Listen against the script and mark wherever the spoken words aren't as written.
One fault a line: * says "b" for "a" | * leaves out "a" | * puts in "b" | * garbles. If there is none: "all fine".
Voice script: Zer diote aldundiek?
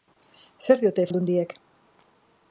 all fine